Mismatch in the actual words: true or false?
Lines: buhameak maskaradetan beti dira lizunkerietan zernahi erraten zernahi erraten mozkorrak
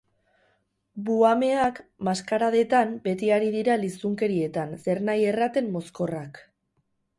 true